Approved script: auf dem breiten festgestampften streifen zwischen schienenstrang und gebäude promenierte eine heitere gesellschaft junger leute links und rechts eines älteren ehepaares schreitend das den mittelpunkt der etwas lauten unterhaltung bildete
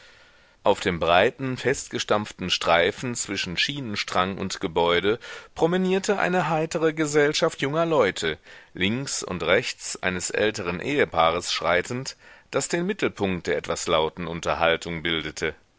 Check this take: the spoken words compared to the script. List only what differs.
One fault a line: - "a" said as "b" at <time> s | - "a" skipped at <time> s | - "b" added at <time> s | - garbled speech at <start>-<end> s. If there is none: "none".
none